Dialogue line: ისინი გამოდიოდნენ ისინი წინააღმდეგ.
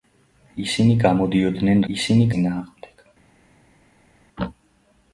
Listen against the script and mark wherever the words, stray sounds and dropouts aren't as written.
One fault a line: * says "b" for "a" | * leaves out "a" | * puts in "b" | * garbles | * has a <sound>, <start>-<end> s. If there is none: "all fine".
all fine